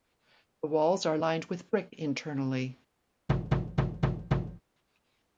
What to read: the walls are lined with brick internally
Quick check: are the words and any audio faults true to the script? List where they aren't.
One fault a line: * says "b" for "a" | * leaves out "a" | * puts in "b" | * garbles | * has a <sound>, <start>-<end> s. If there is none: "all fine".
* has a thud, 3.3-4.6 s